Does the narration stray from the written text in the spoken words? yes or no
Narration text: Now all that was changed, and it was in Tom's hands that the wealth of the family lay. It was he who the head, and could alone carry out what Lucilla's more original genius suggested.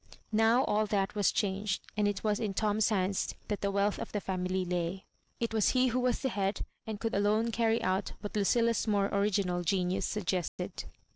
yes